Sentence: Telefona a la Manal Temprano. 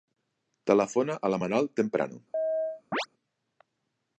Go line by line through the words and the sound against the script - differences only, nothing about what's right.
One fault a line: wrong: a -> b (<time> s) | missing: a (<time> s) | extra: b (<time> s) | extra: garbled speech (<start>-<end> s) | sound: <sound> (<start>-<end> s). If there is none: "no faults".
sound: chirp (2.3-3.1 s)